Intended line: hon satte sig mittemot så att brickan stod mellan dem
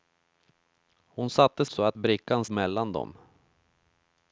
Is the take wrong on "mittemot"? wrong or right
wrong